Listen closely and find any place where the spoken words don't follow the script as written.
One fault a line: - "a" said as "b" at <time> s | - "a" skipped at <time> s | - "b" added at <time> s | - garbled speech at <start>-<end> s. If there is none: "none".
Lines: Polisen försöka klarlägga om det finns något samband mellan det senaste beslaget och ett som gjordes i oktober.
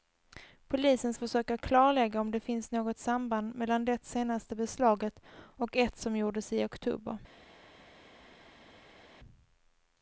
none